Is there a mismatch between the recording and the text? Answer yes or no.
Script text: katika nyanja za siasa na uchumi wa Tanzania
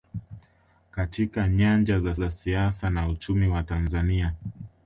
yes